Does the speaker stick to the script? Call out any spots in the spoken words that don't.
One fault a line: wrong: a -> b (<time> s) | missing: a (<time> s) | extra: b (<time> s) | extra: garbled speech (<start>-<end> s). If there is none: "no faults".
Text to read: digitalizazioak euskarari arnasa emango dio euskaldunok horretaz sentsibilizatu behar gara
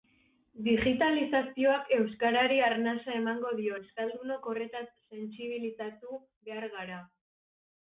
no faults